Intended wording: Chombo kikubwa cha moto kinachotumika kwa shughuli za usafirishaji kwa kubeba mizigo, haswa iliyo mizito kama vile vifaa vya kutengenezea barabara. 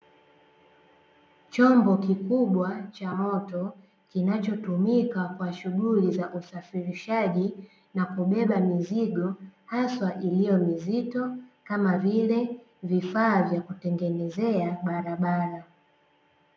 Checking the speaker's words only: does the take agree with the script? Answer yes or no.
no